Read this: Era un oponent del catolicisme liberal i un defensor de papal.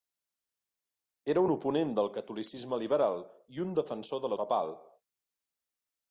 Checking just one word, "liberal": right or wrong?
right